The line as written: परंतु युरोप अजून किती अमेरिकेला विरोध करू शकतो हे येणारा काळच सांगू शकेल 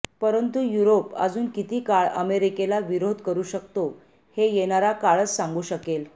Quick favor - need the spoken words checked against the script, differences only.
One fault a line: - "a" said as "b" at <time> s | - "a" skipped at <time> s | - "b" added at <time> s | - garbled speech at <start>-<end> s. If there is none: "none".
- "काळ" added at 1.9 s